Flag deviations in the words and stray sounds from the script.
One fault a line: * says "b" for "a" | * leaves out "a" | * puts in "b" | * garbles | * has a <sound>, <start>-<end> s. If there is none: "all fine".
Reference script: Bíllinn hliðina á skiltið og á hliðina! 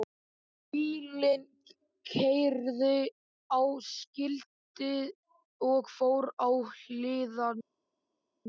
* says "keyrði" for "hliðina"
* puts in "fór"